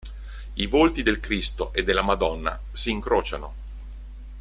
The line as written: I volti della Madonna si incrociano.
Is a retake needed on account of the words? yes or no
yes